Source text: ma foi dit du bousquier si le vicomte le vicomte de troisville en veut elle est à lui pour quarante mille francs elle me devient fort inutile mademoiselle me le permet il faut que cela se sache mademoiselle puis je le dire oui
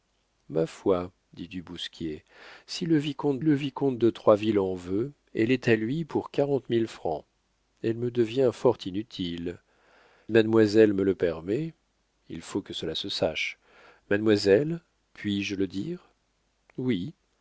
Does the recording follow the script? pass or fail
pass